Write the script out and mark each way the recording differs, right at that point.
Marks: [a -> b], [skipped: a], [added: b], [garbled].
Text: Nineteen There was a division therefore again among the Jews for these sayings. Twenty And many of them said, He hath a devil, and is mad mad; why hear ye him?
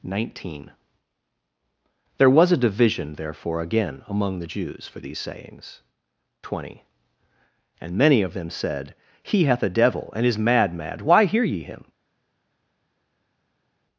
Nineteen There was a division therefore again among the Jews for these sayings. Twenty And many of them said, He hath a devil, and is mad mad; why hear ye him?